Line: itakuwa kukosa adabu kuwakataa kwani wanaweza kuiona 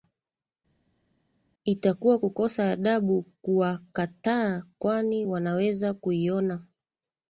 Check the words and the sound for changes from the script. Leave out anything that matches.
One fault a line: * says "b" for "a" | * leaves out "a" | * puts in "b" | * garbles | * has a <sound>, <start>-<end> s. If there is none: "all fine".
all fine